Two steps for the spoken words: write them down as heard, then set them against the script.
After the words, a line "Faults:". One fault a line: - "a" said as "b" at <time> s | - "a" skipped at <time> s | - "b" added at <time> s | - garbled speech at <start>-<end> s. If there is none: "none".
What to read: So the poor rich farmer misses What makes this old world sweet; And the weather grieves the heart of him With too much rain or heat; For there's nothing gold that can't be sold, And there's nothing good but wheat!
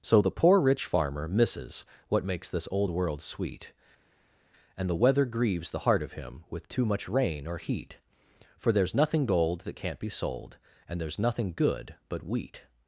So the poor rich farmer misses What makes this old world sweet; And the weather grieves the heart of him With too much rain or heat; For there's nothing gold that can't be sold, And there's nothing good but wheat!
Faults:
none